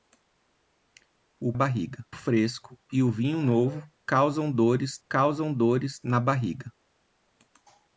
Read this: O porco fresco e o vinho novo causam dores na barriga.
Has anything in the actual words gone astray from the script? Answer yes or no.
yes